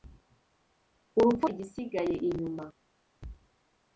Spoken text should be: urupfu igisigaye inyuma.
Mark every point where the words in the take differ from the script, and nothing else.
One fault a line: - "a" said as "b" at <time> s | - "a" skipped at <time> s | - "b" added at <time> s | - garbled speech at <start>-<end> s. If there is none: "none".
none